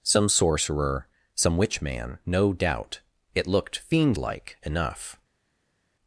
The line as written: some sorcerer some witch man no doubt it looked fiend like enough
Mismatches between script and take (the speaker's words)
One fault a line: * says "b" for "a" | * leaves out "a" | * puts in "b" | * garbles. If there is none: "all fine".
all fine